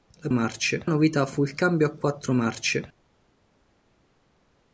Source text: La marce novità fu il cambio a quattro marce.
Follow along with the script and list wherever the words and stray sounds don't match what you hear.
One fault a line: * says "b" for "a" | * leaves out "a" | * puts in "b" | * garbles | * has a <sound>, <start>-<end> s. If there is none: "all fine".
all fine